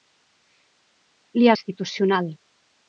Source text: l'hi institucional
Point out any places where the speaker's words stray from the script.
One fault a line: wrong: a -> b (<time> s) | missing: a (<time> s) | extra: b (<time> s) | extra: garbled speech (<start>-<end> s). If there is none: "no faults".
no faults